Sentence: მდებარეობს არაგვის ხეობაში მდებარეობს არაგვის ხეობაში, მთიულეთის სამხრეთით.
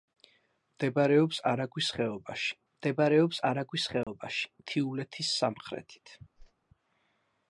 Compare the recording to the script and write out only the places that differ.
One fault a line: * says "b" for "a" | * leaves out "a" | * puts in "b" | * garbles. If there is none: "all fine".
all fine